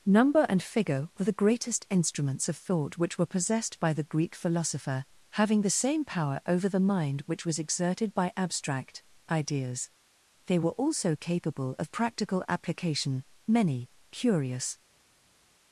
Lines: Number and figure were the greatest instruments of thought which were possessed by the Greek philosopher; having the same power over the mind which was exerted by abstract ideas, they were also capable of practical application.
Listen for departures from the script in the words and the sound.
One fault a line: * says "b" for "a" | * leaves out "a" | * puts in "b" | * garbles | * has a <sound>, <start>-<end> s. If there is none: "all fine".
* puts in "Many curious"